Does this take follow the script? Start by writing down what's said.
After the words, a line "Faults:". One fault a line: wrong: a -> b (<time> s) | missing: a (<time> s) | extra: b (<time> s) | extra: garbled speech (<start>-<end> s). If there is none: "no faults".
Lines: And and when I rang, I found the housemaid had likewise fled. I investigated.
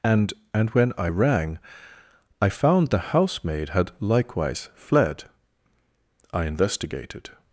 And and when I rang, I found the housemaid had likewise fled. I investigated.
Faults:
no faults